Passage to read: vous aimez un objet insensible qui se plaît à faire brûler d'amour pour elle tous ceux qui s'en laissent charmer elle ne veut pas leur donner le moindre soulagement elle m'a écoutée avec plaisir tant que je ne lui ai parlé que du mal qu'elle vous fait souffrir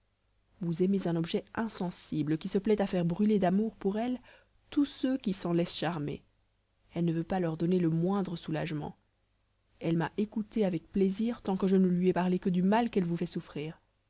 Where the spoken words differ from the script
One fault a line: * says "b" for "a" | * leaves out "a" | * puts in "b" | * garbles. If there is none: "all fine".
all fine